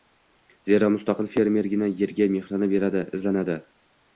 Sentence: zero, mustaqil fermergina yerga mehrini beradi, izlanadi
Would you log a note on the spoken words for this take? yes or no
no